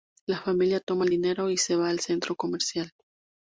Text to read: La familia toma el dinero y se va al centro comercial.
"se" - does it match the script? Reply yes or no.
yes